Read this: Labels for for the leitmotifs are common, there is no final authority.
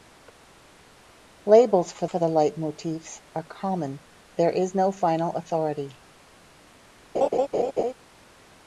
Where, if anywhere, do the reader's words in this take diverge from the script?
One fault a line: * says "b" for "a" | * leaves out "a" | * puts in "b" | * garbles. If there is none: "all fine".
all fine